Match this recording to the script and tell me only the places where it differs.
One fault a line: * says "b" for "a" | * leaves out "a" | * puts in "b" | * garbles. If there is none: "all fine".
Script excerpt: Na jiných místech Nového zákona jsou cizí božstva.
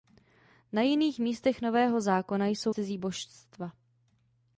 all fine